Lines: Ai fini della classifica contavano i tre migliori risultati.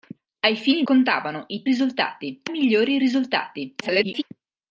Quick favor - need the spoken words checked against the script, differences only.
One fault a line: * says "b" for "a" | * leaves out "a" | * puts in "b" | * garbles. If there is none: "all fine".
* leaves out "della classifica"
* says "risultati" for "tre"
* garbles